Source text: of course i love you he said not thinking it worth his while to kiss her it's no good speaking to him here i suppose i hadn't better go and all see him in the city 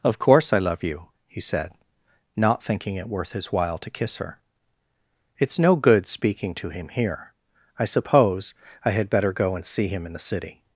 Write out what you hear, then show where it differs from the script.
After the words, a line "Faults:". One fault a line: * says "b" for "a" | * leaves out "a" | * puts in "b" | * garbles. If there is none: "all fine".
of course i love you he said not thinking it worth his while to kiss her it's no good speaking to him here i suppose i had better go and see him in the city
Faults:
* says "had" for "hadn't"
* leaves out "all"